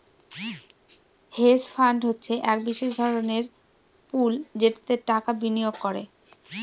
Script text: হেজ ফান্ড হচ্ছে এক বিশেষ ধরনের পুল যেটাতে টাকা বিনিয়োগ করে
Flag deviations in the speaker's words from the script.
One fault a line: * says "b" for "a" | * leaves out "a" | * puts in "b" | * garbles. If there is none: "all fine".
all fine